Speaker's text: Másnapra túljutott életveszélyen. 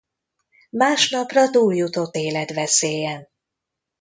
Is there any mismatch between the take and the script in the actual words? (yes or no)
no